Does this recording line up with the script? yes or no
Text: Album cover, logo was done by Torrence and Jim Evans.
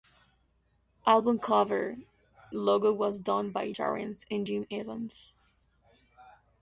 yes